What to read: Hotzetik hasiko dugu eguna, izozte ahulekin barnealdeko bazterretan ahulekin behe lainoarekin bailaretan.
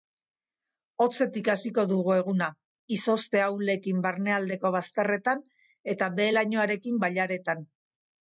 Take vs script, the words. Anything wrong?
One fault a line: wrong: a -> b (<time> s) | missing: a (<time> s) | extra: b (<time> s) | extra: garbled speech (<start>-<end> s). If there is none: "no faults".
wrong: ahulekin -> eta (6.0 s)